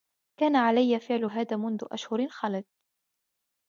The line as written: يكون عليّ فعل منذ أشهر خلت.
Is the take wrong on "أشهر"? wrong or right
right